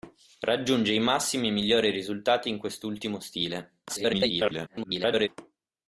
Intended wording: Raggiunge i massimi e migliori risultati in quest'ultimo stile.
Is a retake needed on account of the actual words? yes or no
yes